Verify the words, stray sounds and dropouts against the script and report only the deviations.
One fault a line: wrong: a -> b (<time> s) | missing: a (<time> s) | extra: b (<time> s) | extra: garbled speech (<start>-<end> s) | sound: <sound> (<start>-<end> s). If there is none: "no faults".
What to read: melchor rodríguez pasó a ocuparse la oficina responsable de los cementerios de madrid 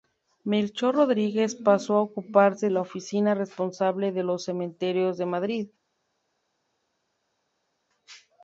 no faults